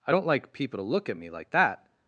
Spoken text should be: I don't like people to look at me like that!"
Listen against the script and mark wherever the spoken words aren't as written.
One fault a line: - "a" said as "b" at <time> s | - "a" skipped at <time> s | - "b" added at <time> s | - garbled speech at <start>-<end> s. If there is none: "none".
none